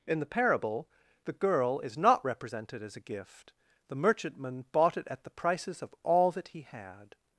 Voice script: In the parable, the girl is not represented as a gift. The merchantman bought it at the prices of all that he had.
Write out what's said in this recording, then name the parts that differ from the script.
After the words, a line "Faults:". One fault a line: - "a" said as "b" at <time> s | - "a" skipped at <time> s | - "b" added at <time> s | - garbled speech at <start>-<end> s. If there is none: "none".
In the parable, the girl is not represented as a gift. The merchantman bought it at the prices of all that he had.
Faults:
none